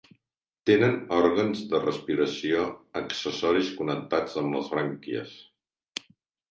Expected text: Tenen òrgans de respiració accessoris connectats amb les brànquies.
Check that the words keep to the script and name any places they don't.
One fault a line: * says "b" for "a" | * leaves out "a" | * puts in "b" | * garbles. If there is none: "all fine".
all fine